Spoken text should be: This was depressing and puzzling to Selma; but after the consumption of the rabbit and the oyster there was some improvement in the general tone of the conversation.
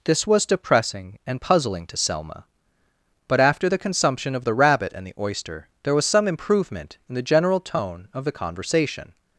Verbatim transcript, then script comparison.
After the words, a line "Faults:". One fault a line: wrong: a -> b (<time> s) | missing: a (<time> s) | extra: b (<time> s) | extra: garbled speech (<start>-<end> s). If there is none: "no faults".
This was depressing and puzzling to Selma; but after the consumption of the rabbit and the oyster there was some improvement in the general tone of the conversation.
Faults:
no faults